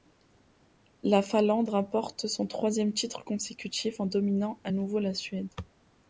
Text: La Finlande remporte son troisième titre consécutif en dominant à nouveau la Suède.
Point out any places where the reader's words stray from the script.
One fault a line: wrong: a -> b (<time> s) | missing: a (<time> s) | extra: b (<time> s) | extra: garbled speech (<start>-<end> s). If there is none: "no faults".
no faults